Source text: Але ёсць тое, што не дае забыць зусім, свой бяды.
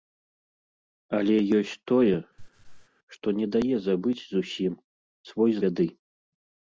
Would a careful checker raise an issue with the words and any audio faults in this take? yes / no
yes